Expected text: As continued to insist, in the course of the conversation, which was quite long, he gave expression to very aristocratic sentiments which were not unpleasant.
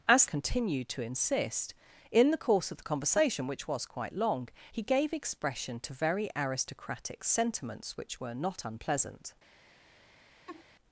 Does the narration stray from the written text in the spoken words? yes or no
no